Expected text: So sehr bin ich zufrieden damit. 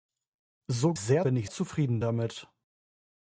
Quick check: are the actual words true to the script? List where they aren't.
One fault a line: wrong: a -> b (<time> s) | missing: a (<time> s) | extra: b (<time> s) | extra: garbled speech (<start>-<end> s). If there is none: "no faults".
no faults